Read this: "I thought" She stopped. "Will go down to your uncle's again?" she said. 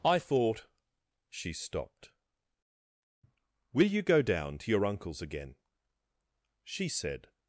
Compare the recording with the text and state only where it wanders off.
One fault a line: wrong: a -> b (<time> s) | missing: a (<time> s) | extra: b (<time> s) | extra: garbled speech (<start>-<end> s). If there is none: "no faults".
extra: you (3.9 s)